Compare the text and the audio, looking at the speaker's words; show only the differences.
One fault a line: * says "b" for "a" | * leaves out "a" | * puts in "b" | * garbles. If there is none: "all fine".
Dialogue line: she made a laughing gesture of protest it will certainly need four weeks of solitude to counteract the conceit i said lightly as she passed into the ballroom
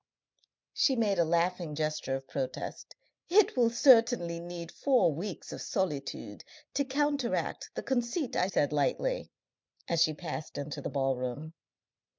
all fine